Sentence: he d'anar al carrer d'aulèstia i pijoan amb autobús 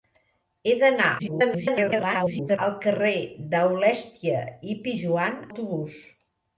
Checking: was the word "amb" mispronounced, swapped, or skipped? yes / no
yes